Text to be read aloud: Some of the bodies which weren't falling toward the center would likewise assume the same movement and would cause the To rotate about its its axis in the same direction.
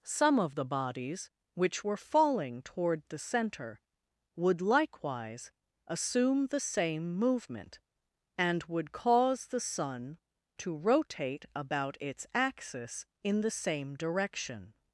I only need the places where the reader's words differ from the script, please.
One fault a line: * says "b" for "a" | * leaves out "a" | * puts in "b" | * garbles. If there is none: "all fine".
* says "were" for "weren't"
* puts in "Sun"
* leaves out "its"